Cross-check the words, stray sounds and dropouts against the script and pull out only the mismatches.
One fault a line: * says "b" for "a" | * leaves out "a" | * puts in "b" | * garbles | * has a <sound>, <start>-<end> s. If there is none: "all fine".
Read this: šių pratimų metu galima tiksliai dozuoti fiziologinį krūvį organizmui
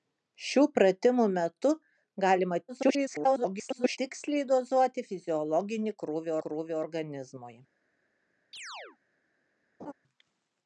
* garbles
* puts in "krūvį"
* has a chirp, 8.5-9.0 s
* has a laugh, 9.8-9.9 s